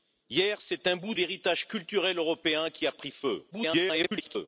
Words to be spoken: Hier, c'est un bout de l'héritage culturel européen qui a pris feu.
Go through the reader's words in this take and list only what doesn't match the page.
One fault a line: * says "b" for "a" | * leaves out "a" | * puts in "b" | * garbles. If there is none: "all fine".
* leaves out "de"
* garbles